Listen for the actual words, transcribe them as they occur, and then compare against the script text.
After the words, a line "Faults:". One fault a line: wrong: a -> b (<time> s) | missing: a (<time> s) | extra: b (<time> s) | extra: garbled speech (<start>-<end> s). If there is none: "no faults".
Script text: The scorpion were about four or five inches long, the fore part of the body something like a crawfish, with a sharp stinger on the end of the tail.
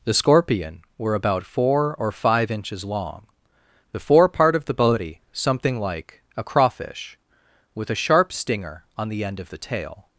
The scorpion were about four or five inches long, the fore part of the body something like a crawfish, with a sharp stinger on the end of the tail.
Faults:
no faults